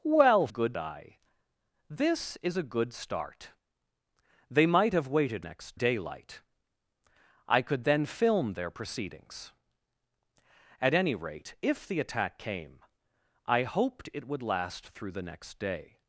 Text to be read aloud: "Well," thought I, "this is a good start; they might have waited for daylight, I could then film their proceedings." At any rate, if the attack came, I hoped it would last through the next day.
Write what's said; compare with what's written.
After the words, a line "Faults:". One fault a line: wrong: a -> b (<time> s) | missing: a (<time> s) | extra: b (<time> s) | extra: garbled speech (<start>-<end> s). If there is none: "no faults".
"Well," good I, "this is a good start; they might have waited next daylight, I could then film their proceedings." At any rate, if the attack came, I hoped it would last through the next day.
Faults:
wrong: thought -> good (0.5 s)
wrong: for -> next (5.4 s)